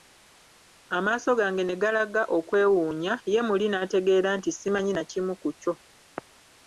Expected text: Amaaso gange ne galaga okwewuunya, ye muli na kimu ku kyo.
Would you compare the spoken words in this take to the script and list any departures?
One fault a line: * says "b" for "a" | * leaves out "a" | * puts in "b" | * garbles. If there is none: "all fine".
* puts in "n'ategeera nti simanyi"